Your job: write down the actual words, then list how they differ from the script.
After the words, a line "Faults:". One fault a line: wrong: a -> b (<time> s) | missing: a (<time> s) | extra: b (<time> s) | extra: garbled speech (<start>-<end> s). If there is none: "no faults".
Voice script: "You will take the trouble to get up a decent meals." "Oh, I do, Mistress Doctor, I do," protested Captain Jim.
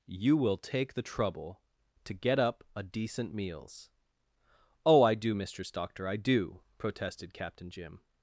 "You will take the trouble to get up a decent meals." "Oh, I do, Mistress Doctor, I do," protested Captain Jim.
Faults:
no faults